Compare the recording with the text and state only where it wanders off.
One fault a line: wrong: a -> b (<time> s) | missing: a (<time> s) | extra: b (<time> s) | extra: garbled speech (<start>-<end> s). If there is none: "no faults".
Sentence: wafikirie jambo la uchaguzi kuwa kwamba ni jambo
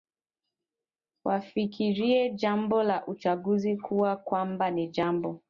no faults